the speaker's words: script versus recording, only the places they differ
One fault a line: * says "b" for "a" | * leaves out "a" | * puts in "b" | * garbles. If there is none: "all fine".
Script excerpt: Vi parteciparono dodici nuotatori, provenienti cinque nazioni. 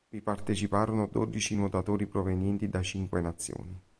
* puts in "da"